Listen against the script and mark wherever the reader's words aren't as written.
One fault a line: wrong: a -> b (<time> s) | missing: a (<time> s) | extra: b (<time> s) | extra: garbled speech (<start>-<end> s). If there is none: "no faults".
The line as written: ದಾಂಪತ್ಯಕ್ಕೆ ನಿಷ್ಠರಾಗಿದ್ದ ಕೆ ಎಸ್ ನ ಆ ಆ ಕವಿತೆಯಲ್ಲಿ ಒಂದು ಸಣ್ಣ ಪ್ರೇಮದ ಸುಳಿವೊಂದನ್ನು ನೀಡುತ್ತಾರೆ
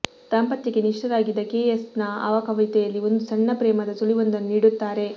missing: ಆ (2.3 s)